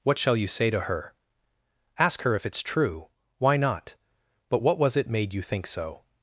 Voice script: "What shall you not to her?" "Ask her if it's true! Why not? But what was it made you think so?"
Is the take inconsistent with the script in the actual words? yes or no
yes